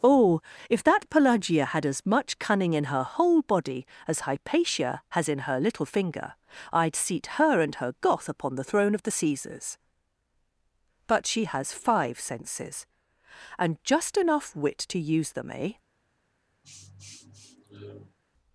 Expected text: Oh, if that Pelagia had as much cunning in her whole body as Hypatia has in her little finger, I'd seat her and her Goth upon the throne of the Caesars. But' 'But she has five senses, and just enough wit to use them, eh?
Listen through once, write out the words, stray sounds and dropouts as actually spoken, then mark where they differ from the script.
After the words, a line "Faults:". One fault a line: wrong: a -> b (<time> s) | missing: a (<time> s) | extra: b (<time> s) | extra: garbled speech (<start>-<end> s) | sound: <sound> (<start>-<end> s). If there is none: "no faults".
Oh, if that Pelagia had as much cunning in her whole body as Hypatia has in her little finger, I'd seat her and her Goth upon the throne of the Caesars. But' she has five senses, and just enough wit to use them, eh?
Faults:
missing: But (11.2 s)
sound: sniff (16.6-18.2 s)